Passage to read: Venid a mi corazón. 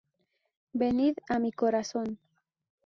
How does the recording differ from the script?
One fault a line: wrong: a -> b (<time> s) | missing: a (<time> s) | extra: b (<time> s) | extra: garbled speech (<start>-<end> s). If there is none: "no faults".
no faults